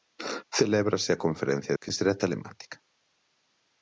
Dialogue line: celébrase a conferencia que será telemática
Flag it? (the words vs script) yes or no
no